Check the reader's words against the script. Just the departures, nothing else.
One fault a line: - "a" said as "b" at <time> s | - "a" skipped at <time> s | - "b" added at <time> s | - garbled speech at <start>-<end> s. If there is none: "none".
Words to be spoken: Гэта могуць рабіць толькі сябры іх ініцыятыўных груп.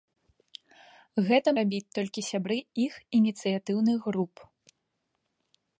- "могуць" skipped at 1.5 s